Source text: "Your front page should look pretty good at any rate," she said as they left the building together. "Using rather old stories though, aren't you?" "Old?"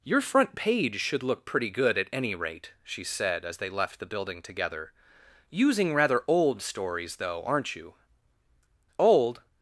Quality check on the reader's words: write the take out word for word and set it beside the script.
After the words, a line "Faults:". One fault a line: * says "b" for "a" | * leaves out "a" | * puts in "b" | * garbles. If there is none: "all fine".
"Your front page should look pretty good at any rate," she said as they left the building together. "Using rather old stories though, aren't you?" "Old?"
Faults:
all fine